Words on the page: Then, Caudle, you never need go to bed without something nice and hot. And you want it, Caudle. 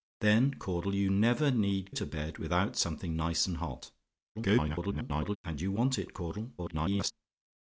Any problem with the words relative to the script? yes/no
yes